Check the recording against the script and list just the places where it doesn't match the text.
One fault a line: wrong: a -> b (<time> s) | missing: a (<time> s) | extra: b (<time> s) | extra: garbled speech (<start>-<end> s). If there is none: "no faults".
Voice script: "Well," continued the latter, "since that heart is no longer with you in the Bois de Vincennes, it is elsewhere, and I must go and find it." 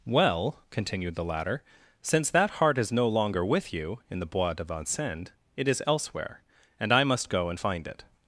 no faults